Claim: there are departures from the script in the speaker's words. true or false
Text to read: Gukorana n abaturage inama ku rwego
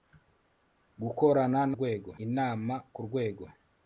true